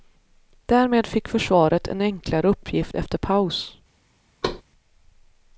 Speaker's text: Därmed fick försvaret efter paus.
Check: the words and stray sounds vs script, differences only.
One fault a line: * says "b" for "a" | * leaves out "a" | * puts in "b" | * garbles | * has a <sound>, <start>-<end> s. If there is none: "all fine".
* puts in "en enklare uppgift"
* has a thud, 4.4-4.6 s